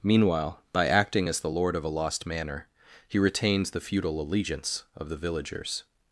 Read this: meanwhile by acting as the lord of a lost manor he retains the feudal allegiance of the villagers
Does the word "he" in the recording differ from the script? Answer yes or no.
no